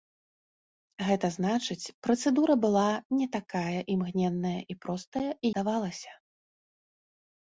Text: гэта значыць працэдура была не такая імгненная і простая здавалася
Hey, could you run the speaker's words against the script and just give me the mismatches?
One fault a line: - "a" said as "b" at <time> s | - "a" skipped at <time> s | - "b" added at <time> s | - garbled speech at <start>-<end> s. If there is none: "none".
none